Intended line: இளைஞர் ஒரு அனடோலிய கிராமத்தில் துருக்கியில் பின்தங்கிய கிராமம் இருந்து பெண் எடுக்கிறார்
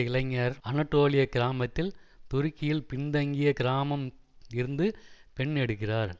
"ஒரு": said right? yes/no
no